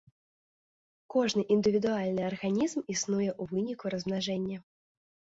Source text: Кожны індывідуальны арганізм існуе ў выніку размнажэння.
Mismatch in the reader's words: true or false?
false